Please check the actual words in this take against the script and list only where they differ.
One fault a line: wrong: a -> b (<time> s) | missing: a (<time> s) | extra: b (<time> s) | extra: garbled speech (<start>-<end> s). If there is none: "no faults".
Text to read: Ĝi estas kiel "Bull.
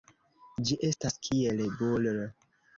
no faults